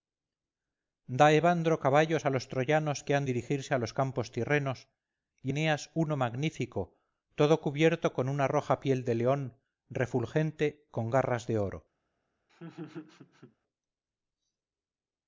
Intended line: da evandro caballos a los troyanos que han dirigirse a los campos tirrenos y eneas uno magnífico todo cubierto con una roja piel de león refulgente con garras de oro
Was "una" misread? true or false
false